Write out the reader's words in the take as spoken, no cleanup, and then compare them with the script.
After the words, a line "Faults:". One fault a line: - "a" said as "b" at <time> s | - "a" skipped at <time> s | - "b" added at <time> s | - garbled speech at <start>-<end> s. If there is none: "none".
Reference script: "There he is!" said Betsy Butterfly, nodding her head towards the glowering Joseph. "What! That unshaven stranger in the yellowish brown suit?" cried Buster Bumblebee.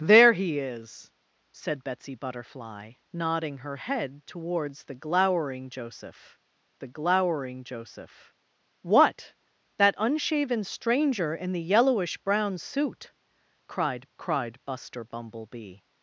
"There he is!" said Betsy Butterfly, nodding her head towards the glowering Joseph the glowering Joseph. "What! That unshaven stranger in the yellowish brown suit?" cried cried Buster Bumblebee.
Faults:
- "the glowering Joseph" added at 6.8 s
- "cried" added at 14.2 s